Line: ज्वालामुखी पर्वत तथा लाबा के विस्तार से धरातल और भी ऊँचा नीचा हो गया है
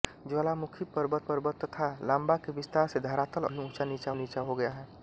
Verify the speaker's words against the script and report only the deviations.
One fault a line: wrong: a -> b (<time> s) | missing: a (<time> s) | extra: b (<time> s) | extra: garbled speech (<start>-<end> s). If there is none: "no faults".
extra: पर्वत (1.3 s)
missing: और (3.5 s)
extra: नीचा (4.1 s)